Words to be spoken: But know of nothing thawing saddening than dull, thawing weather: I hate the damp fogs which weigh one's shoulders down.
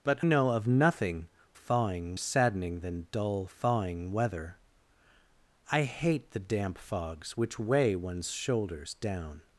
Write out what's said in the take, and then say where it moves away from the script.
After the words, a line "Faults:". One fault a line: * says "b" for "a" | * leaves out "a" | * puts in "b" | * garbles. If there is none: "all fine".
But know of nothing thawing saddening than dull, thawing weather: I hate the damp fogs which weigh one's shoulders down.
Faults:
all fine